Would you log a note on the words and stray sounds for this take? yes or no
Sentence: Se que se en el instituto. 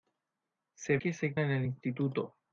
no